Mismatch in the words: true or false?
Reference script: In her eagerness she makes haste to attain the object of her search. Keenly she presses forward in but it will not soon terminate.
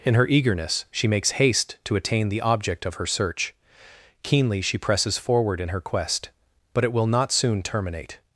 true